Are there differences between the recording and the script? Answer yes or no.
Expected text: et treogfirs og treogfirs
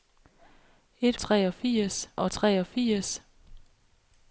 no